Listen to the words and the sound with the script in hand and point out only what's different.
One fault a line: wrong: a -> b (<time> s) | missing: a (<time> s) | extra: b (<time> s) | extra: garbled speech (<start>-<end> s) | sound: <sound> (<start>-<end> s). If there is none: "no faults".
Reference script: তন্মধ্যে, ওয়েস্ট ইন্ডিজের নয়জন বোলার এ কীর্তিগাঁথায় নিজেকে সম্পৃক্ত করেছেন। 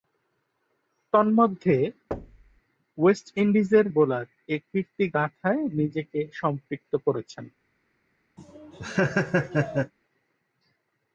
sound: thud (2.1-2.6 s)
missing: নয়জন (3.9 s)
sound: laugh (8.4-9.9 s)